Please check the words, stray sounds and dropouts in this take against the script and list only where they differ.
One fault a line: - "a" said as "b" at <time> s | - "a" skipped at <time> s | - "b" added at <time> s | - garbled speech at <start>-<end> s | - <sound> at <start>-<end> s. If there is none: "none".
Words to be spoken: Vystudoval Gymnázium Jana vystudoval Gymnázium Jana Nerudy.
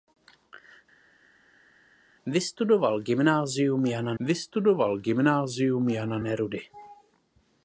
none